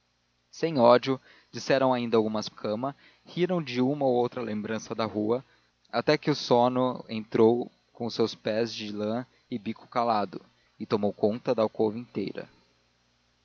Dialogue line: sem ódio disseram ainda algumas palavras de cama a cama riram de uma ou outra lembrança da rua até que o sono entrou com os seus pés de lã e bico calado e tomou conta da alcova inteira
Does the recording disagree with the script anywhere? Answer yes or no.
yes